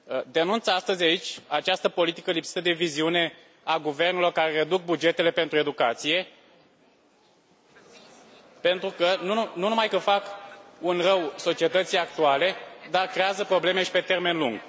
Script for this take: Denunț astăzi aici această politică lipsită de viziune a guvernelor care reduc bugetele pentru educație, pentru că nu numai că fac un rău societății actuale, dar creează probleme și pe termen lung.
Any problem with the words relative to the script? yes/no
no